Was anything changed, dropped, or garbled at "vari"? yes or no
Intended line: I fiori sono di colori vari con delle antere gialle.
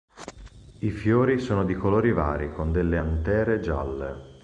no